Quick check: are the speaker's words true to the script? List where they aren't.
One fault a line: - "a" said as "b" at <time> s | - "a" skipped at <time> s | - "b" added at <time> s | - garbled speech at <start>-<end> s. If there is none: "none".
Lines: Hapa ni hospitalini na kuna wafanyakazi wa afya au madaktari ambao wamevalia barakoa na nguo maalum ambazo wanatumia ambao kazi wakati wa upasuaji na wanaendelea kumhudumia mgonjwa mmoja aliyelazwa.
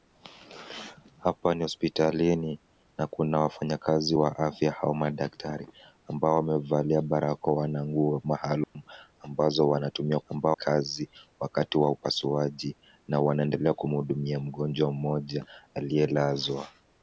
none